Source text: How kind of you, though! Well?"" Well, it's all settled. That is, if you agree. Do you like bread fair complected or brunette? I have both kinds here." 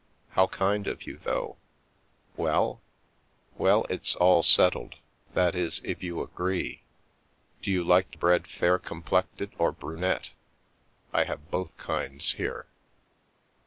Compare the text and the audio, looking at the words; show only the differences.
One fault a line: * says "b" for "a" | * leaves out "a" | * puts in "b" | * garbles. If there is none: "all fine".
all fine